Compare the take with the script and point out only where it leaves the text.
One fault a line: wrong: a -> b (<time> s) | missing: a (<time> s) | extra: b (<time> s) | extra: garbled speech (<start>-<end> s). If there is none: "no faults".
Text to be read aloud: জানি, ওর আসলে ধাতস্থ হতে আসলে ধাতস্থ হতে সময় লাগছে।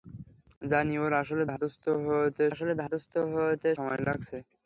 no faults